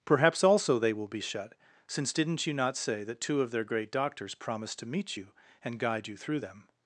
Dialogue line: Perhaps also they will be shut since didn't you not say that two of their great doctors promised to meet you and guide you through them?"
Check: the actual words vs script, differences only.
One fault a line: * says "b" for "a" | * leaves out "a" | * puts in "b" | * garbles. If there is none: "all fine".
all fine